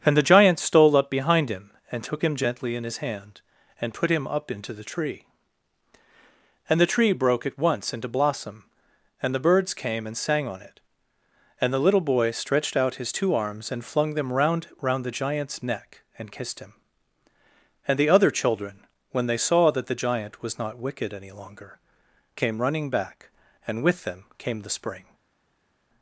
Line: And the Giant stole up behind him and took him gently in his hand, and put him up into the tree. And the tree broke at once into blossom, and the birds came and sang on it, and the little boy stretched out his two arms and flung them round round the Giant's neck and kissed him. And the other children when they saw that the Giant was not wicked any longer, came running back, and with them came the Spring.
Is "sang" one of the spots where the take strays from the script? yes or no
no